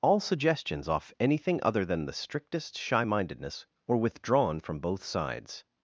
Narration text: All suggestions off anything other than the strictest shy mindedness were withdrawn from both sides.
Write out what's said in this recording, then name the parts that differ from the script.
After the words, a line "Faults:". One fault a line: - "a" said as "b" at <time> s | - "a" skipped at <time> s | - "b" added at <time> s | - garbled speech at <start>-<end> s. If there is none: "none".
All suggestions off anything other than the strictest shy mindedness were withdrawn from both sides.
Faults:
none